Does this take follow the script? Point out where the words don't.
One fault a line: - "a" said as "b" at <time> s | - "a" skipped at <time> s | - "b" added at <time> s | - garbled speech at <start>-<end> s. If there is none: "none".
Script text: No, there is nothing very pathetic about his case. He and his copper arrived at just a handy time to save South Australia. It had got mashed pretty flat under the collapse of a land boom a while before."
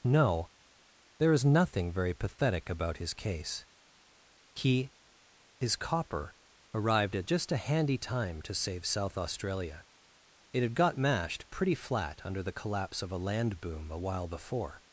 - "and" skipped at 4.9 s